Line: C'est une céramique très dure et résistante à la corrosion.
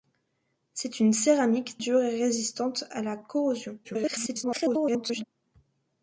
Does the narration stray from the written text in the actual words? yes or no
yes